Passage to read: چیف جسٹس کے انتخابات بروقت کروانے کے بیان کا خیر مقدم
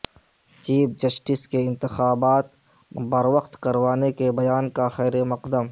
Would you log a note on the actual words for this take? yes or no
no